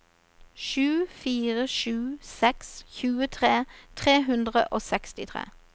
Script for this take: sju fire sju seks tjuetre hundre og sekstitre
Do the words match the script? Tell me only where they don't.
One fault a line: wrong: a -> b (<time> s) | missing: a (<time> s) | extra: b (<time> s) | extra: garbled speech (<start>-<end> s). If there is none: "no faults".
extra: tre (4.0 s)